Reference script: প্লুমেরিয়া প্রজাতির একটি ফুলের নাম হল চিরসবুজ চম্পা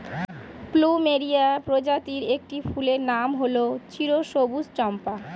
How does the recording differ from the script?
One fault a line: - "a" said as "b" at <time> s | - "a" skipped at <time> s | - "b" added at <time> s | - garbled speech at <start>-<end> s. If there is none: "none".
none